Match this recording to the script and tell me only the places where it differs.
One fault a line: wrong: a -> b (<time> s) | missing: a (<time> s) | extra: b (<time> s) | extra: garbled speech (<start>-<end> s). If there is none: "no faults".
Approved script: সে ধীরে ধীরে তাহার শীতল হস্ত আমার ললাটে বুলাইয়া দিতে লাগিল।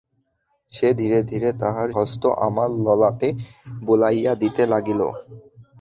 missing: শীতল (1.9 s)